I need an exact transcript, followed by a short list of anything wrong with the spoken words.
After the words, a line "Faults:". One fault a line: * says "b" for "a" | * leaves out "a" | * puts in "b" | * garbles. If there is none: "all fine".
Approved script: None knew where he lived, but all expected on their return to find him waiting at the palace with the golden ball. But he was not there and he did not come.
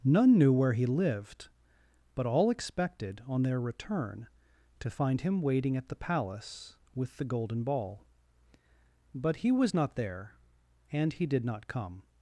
None knew where he lived, but all expected on their return to find him waiting at the palace with the golden ball. But he was not there and he did not come.
Faults:
all fine